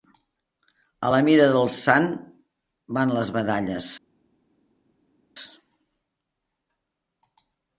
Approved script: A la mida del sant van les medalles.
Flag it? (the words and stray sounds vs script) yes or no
no